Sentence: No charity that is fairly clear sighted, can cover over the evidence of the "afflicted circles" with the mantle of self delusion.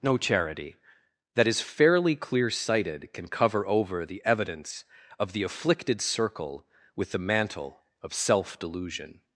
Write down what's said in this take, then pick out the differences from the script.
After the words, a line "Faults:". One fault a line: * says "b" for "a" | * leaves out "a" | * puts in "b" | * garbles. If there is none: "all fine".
No charity that is fairly clear sighted, can cover over the evidence of the "afflicted circle" with the mantle of self delusion.
Faults:
* says "circle" for "circles"